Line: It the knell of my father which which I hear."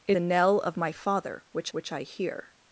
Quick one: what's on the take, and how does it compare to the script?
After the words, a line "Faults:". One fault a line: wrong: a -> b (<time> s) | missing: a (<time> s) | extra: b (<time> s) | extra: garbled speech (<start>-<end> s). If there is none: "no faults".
It the knell of my father which which I hear."
Faults:
no faults